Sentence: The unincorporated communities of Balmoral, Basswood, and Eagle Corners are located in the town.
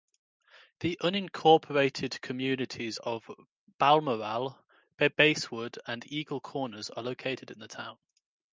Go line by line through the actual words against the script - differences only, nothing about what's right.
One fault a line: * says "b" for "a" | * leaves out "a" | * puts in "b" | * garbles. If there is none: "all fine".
all fine